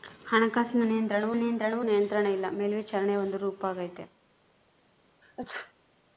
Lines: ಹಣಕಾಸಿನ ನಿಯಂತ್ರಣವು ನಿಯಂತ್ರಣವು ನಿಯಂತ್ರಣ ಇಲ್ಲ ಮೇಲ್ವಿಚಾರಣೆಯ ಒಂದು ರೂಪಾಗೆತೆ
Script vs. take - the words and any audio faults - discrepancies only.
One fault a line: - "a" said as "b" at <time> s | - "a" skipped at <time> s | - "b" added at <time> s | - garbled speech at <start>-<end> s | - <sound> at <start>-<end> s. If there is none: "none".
- sneeze at 5.2-5.7 s